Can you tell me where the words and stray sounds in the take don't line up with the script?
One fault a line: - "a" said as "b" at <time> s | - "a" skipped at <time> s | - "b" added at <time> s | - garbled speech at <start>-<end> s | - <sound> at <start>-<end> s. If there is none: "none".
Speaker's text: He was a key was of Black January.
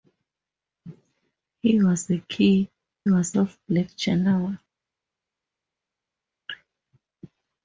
none